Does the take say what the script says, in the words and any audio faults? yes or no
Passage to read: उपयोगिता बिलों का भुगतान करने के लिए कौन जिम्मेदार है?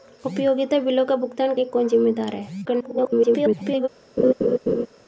no